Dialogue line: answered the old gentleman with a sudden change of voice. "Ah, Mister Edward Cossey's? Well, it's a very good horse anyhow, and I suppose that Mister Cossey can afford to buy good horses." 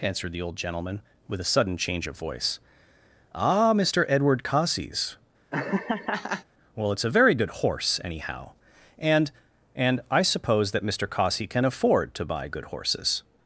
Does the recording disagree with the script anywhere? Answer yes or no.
yes